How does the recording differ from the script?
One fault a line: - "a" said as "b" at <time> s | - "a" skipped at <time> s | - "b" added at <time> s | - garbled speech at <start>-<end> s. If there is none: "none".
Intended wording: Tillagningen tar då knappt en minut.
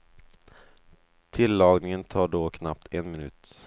none